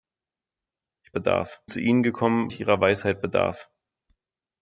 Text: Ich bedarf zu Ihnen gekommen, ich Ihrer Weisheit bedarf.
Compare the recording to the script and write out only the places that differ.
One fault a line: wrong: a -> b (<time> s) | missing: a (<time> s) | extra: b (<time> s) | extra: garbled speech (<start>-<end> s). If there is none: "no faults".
no faults